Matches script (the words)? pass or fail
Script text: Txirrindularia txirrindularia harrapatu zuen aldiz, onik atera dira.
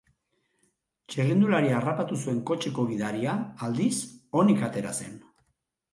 fail